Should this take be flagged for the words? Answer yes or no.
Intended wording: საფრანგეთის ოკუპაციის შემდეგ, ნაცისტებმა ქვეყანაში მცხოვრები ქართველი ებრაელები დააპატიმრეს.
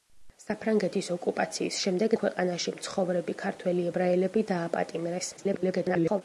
yes